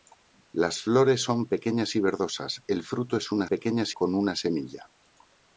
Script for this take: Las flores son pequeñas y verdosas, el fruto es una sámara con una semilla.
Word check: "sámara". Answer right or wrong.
wrong